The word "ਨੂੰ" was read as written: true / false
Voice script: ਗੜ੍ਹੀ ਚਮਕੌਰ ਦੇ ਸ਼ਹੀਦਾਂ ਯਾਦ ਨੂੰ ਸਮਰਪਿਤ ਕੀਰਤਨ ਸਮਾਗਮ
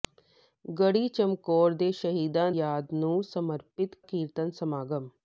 true